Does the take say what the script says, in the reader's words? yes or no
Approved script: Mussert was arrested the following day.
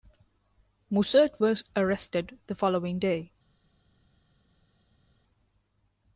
yes